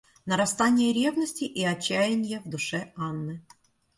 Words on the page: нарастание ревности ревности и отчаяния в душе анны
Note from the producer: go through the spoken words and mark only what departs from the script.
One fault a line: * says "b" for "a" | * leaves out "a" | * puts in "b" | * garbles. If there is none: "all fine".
* leaves out "ревности"